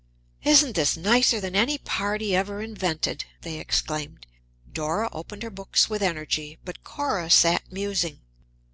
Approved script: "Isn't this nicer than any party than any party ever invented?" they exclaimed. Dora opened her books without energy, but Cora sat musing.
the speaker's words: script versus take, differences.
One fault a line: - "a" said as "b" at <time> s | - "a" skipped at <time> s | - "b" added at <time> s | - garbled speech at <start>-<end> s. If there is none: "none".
- "than any party" skipped at 2.3 s
- "without" said as "with" at 5.9 s